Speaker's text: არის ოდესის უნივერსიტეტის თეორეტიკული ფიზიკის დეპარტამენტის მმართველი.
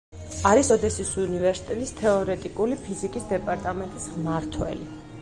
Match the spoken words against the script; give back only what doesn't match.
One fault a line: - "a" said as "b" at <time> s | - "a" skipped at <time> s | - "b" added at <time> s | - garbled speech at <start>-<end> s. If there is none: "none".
none